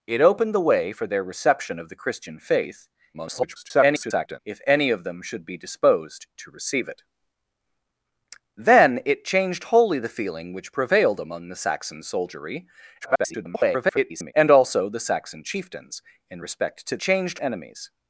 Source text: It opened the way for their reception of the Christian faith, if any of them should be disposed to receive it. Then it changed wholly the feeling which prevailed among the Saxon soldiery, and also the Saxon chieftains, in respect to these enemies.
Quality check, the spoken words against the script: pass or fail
fail